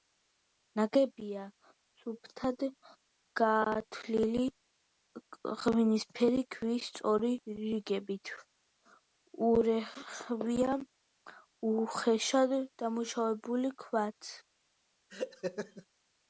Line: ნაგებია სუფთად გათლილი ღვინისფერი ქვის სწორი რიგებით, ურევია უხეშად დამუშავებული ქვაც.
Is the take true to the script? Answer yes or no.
yes